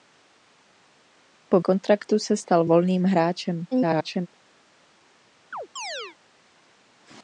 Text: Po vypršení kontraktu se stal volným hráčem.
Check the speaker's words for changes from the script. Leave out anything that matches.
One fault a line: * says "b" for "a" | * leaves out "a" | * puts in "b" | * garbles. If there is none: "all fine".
* leaves out "vypršení"
* garbles